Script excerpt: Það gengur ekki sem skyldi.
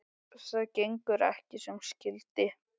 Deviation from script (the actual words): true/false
false